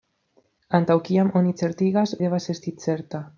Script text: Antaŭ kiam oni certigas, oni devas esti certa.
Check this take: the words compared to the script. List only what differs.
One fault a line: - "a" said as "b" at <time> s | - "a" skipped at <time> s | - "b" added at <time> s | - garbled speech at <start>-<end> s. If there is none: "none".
- "oni" skipped at 2.1 s